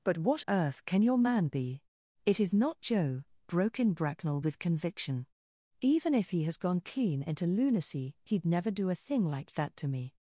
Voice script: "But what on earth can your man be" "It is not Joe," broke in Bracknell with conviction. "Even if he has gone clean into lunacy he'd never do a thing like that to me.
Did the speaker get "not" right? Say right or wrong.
right